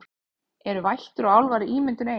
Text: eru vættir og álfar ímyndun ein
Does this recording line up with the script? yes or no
yes